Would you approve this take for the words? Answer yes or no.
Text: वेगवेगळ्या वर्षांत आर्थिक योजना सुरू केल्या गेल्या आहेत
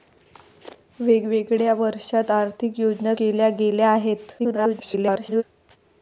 no